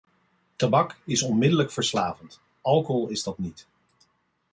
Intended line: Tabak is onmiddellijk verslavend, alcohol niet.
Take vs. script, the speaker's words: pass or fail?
fail